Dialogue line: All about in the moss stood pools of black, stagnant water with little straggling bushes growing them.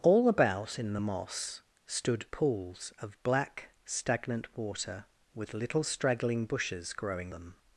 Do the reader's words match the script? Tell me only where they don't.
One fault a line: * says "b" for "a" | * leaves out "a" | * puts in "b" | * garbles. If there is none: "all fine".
all fine